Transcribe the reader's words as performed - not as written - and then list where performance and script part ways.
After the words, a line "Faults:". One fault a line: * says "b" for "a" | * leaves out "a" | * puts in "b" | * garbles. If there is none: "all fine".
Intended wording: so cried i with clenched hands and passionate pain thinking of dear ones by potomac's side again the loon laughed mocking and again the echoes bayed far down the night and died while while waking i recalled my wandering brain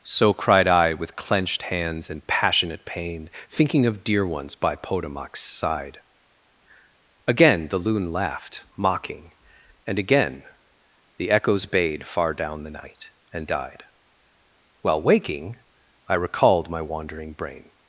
so cried i with clenched hands and passionate pain thinking of dear ones by potomac's side again the loon laughed mocking and again the echoes bayed far down the night and died while waking i recalled my wandering brain
Faults:
* leaves out "while"